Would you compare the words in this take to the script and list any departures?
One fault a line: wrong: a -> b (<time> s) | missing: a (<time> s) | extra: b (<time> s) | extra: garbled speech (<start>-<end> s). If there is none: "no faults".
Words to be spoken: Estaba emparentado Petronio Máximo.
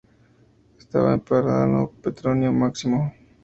no faults